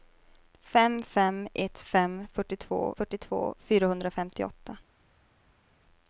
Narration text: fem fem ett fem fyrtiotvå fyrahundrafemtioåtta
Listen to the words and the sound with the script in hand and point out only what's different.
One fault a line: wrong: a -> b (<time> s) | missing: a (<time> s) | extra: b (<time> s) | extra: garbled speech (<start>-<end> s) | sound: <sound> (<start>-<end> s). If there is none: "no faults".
extra: fyrtiotvå (3.0 s)